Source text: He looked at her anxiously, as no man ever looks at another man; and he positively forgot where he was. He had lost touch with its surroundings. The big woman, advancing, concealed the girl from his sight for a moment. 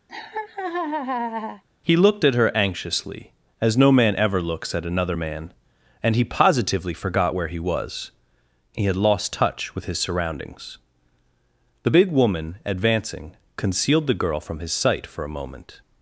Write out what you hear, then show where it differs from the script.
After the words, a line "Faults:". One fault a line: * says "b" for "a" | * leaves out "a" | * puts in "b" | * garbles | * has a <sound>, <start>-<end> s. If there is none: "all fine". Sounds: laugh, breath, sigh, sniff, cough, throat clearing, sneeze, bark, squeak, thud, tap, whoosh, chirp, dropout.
He looked at her anxiously, as no man ever looks at another man; and he positively forgot where he was. He had lost touch with his surroundings. The big woman, advancing, concealed the girl from his sight for a moment.
Faults:
* has a laugh, 0.1-1.6 s
* says "his" for "its"